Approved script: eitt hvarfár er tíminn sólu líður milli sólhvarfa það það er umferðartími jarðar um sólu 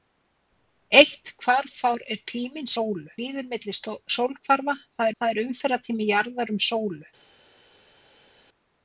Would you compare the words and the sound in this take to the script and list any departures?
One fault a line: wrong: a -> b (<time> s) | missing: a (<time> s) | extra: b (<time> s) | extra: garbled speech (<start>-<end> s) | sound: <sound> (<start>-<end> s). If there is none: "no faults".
no faults